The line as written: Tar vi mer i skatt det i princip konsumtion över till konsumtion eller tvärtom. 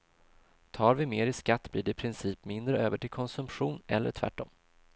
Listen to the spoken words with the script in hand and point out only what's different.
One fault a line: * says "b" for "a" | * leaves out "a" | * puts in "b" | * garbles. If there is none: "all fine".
* puts in "blir"
* says "mindre" for "konsumtion"